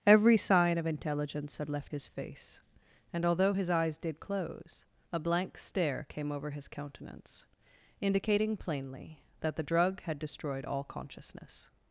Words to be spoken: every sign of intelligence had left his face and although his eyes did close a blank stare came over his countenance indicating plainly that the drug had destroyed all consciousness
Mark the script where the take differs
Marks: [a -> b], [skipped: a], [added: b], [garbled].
every sign of intelligence had left his face and although his eyes did close a blank stare came over his countenance indicating plainly that the drug had destroyed all consciousness